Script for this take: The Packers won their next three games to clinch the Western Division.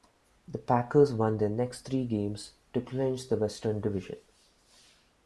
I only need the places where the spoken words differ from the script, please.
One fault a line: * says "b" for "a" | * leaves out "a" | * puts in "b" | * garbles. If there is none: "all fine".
all fine